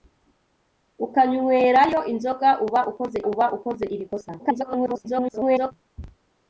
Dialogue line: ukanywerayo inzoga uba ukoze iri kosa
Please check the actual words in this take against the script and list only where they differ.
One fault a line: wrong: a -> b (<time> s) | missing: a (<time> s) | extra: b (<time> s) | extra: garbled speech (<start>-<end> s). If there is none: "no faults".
extra: uba ukoze (3.3 s)
extra: garbled speech (4.4-5.7 s)